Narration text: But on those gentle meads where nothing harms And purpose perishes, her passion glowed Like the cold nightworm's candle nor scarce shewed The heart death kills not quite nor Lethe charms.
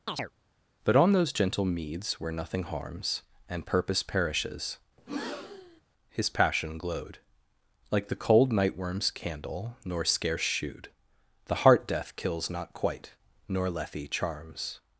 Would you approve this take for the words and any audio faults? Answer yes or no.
no